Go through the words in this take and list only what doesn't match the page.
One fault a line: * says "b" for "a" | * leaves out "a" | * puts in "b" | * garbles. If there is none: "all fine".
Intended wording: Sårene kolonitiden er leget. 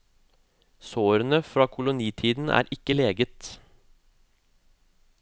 * puts in "fra"
* puts in "ikke"